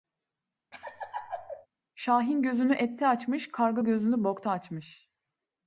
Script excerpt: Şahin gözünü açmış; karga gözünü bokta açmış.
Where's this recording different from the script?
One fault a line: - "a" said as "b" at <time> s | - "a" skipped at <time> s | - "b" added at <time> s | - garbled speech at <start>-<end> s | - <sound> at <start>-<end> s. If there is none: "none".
- laugh at 0.7-1.7 s
- "ette" added at 2.8 s